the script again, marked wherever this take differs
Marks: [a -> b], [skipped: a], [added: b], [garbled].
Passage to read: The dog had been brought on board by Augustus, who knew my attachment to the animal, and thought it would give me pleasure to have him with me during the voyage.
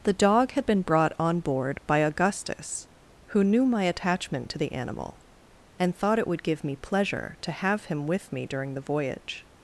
The dog had been brought on board by Augustus, who knew my attachment to the animal, and thought it would give me pleasure to have him with me during the voyage.